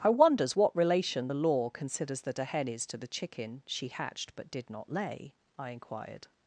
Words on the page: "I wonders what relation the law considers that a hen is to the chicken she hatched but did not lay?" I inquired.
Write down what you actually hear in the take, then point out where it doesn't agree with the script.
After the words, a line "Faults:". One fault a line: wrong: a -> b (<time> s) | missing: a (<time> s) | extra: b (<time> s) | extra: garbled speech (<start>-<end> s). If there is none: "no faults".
"I wonders what relation the law considers that a hen is to the chicken she hatched but did not lay?" I inquired.
Faults:
no faults